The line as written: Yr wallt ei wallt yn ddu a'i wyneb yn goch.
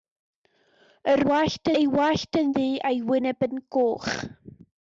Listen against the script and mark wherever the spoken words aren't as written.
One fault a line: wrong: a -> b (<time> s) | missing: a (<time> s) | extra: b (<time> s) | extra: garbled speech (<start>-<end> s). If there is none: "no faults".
no faults